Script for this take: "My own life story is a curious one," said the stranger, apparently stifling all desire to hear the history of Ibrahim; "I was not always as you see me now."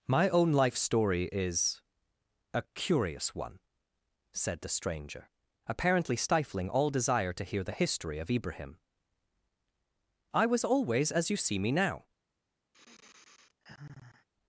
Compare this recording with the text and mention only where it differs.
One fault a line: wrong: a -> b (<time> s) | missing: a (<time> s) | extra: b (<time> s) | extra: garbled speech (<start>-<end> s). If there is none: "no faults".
missing: not (10.6 s)